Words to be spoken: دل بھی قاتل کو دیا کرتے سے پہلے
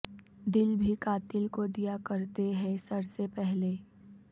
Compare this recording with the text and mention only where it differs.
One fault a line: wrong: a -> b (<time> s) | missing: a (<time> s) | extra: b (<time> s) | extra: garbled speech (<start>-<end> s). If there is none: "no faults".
extra: ہیں سر (2.5 s)